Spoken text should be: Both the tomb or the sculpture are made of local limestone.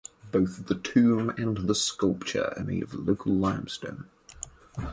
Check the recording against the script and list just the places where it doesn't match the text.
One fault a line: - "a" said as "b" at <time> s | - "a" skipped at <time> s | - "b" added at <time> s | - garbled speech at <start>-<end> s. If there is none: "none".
- "or" said as "and" at 1.4 s